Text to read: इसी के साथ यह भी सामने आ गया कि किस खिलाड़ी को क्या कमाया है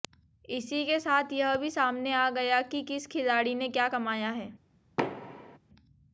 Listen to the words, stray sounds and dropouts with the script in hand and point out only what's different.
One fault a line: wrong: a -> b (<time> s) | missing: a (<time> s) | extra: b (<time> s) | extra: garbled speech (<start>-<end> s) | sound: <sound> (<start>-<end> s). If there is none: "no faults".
wrong: को -> ने (3.6 s)
sound: thud (5.0-5.6 s)